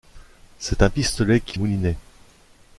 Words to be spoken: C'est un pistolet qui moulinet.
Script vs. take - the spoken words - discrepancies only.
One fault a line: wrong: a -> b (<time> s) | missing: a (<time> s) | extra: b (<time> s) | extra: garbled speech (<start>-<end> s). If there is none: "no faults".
no faults